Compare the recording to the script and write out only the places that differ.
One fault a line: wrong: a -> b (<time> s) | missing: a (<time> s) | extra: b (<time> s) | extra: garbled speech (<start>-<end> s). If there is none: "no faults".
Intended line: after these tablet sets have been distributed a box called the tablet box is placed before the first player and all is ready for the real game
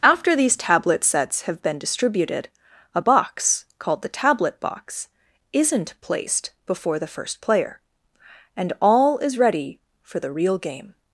wrong: is -> isn't (5.5 s)